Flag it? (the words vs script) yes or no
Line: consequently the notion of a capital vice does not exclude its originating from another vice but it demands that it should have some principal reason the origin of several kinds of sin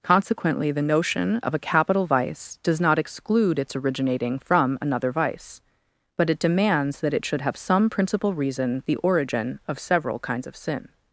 no